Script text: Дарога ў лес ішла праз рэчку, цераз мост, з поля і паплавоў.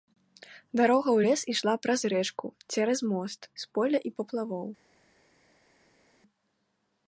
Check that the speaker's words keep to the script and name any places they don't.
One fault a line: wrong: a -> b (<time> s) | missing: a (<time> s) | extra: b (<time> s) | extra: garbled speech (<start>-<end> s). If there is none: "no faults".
no faults